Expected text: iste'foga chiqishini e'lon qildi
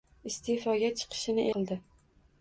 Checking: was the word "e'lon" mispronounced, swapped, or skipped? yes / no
yes